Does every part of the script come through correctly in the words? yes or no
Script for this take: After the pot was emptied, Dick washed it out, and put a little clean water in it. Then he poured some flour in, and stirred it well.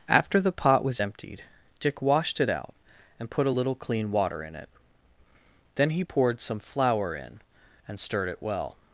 yes